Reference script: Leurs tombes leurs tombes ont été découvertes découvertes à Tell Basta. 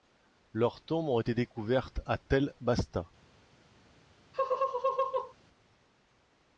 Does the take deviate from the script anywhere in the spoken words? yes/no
yes